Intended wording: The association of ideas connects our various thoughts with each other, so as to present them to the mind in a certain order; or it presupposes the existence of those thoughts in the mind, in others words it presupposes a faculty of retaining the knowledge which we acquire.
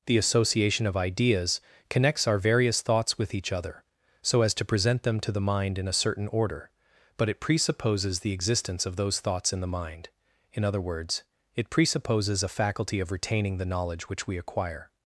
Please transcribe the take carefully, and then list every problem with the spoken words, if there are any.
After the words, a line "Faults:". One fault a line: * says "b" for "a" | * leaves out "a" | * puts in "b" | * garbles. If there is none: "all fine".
The association of ideas connects our various thoughts with each other, so as to present them to the mind in a certain order; but it presupposes the existence of those thoughts in the mind, in other words it presupposes a faculty of retaining the knowledge which we acquire.
Faults:
* says "but" for "or"
* says "other" for "others"